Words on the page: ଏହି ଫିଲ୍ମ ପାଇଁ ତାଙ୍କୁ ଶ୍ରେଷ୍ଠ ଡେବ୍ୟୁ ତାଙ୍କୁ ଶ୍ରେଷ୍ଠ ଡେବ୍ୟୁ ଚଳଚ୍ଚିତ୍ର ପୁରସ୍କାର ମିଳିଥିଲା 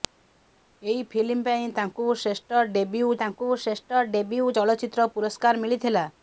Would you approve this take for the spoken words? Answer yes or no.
yes